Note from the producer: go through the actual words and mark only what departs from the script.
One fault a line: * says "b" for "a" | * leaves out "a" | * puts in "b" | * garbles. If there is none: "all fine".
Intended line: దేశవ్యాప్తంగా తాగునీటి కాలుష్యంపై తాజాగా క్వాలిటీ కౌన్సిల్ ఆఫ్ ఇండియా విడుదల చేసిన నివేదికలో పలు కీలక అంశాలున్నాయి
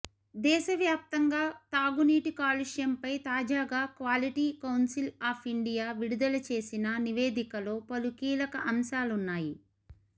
all fine